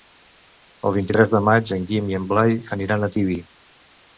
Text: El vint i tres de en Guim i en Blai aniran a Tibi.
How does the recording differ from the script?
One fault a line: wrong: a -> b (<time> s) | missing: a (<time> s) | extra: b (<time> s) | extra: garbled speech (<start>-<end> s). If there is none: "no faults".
extra: maig (1.5 s)